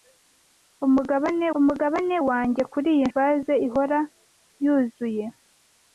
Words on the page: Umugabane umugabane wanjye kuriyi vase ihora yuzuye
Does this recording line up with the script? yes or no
yes